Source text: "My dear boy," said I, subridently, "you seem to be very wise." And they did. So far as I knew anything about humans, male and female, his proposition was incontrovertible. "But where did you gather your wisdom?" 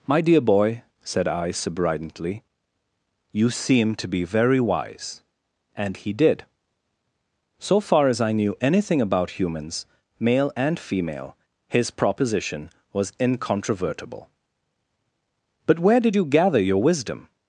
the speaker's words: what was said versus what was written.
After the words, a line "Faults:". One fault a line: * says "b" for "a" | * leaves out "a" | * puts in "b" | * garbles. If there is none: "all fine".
"My dear boy," said I, subridently, "you seem to be very wise." And he did. So far as I knew anything about humans, male and female, his proposition was incontrovertible. "But where did you gather your wisdom?"
Faults:
* says "he" for "they"